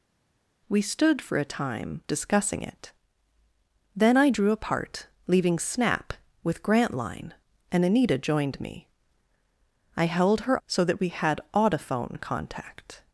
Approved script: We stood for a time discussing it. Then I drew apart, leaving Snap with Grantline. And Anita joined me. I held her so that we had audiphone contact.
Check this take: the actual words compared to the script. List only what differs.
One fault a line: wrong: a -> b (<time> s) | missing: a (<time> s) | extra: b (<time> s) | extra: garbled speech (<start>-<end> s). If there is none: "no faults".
no faults